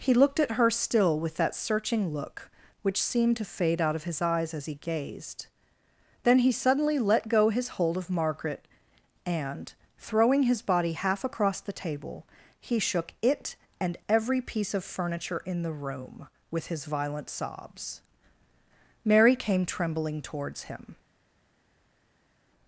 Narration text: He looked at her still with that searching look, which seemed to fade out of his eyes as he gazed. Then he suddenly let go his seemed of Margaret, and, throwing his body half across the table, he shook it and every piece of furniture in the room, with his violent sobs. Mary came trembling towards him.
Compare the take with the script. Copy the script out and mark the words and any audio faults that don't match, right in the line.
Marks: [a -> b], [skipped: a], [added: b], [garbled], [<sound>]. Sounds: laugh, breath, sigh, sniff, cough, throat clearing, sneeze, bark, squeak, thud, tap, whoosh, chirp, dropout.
He looked at her still with that searching look, which seemed to fade out of his eyes as he gazed. Then he suddenly let go his [seemed -> hold] of Margaret, and, throwing his body half across the table, he shook it and every piece of furniture in the room, with his violent sobs. Mary came trembling towards him.